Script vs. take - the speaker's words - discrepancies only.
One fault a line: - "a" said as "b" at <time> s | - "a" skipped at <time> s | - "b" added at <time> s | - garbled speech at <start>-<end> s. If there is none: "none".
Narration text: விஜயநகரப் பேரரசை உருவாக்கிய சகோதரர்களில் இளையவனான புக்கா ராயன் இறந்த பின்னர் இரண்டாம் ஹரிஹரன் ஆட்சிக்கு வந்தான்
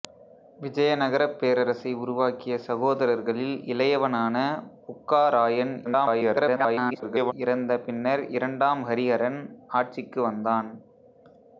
- garbled speech at 5.8-7.3 s